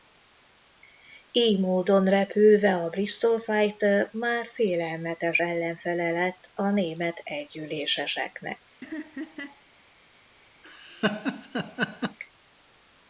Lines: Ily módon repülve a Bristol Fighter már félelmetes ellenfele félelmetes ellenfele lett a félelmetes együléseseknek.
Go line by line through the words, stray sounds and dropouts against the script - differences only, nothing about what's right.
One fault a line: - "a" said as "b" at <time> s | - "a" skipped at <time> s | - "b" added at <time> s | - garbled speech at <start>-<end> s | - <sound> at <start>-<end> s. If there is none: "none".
- "félelmetes ellenfele" skipped at 6.1 s
- "félelmetes" said as "német" at 6.7 s
- laugh at 8.8-9.6 s
- laugh at 10.6-12.2 s